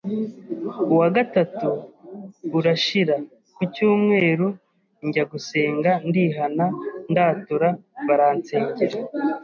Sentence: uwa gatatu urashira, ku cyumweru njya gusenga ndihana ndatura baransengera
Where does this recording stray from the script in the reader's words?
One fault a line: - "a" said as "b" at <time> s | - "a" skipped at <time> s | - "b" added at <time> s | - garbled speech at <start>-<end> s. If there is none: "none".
none